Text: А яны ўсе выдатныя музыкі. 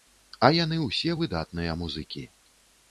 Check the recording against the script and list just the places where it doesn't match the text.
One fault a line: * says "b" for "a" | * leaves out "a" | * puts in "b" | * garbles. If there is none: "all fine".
all fine